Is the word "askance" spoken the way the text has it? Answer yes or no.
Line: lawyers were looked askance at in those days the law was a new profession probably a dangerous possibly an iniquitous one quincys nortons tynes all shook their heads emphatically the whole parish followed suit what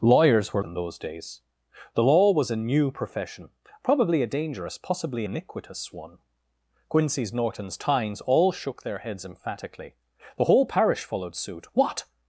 no